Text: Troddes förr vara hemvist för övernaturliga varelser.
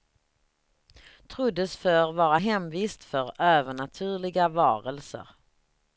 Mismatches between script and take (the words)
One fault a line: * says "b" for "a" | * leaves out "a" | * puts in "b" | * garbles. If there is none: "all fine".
all fine